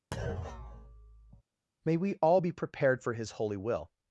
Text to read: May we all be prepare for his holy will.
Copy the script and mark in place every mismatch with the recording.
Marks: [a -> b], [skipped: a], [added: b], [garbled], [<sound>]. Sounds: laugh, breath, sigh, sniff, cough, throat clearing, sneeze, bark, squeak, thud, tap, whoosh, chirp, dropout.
[thud] May we all be [prepare -> prepared] for his holy will.